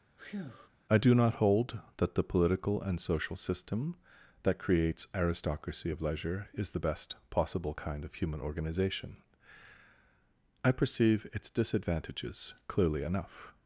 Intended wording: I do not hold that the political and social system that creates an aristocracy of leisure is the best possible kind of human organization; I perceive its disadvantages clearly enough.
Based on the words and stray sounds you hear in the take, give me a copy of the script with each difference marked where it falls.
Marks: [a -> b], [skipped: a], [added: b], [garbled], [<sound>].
[breath] I do not hold that the political and social system that creates [skipped: an] aristocracy of leisure is the best possible kind of human organization; I perceive its disadvantages clearly enough.